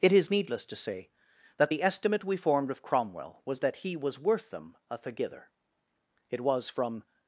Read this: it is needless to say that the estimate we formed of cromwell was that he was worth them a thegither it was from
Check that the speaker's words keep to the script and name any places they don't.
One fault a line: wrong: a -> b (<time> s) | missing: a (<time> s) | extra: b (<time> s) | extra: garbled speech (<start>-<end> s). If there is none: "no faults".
no faults